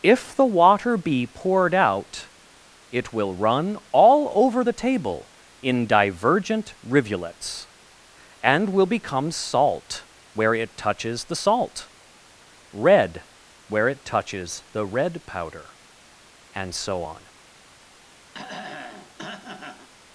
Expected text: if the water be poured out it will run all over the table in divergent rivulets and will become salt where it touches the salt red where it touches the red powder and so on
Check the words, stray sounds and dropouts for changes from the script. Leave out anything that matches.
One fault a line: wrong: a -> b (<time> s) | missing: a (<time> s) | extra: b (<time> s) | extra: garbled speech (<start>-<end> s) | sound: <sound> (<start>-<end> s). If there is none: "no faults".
sound: throat clearing (18.3-19.9 s)